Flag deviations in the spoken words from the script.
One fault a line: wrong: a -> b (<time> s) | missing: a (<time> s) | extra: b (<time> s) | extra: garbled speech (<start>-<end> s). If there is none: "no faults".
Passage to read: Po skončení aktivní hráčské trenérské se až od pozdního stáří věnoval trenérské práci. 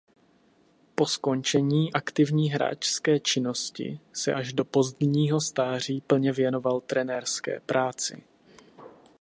wrong: trenérské -> činnosti (3.2 s)
wrong: od -> do (4.5 s)
extra: plně (6.0 s)